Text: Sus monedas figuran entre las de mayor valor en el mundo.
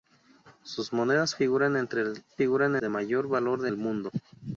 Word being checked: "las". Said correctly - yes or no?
no